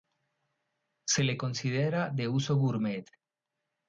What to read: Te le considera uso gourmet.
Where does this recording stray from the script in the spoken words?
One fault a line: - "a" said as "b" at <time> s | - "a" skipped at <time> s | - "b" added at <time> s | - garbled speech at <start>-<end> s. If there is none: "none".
- "Te" said as "Se" at 1.0 s
- "de" added at 2.1 s